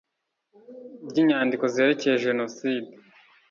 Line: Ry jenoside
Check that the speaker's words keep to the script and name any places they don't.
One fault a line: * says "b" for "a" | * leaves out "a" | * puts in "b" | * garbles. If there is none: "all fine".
* puts in "inyandiko zerekeye"